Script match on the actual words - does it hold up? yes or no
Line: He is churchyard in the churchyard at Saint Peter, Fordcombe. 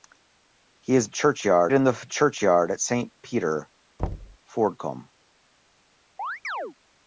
yes